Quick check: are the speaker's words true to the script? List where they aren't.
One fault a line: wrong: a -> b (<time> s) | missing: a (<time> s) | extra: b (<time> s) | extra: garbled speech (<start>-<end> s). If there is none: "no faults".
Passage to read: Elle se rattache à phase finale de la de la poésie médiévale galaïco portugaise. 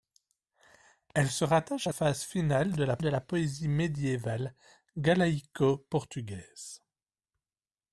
no faults